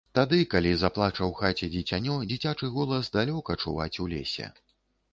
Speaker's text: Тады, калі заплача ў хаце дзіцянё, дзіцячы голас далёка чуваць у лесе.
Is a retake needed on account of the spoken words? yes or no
no